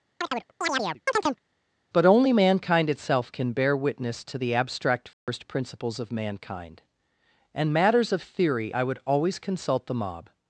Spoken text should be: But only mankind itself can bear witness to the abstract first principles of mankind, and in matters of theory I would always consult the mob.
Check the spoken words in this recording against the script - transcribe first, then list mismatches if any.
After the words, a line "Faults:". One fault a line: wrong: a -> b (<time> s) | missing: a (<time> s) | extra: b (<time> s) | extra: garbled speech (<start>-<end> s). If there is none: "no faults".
But only mankind itself can bear witness to the abstract first principles of mankind, and matters of theory I would always consult the mob.
Faults:
missing: in (7.7 s)